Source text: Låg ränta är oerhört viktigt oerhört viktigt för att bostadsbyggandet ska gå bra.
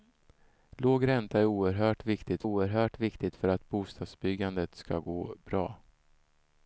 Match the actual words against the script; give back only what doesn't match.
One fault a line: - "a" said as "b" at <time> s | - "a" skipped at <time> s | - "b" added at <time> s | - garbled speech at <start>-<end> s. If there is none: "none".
none